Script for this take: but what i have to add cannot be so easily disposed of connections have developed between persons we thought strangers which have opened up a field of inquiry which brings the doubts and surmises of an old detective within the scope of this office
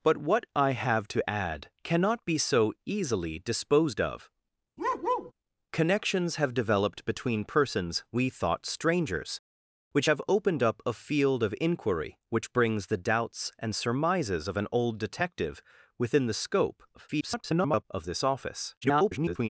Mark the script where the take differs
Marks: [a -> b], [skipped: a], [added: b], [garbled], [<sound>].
but what i have to add cannot be so easily disposed of [bark] connections have developed between persons we thought strangers which have opened up a field of inquiry which brings the doubts and surmises of an old detective within the scope [garbled] of this office [garbled]